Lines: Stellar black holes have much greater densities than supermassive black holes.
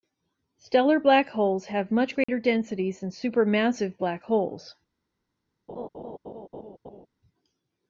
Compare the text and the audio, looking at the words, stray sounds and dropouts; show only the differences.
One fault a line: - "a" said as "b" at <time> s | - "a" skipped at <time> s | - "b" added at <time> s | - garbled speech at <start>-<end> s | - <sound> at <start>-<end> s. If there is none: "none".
- dropout at 2.2-2.3 s
- laugh at 5.7-7.1 s